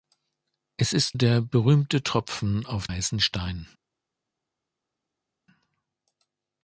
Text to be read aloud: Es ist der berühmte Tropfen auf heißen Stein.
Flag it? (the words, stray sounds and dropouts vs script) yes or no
no